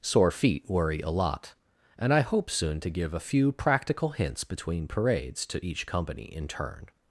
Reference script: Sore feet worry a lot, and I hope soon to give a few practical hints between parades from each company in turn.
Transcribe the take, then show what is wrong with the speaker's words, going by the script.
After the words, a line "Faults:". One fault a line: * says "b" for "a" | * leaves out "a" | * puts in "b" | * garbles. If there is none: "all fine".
Sore feet worry a lot, and I hope soon to give a few practical hints between parades to each company in turn.
Faults:
* says "to" for "from"